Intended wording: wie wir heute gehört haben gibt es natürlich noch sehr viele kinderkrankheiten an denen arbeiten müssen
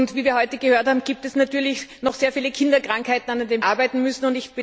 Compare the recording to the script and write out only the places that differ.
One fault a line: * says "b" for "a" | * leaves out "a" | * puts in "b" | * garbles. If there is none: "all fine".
all fine